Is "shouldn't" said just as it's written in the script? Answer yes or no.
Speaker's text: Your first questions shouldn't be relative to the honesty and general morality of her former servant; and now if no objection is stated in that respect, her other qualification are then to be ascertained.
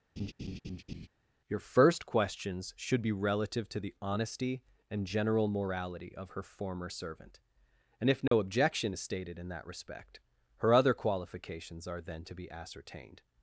no